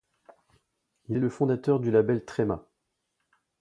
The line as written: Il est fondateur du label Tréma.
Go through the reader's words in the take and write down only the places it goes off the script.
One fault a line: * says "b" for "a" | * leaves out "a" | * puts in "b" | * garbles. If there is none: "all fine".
* puts in "le"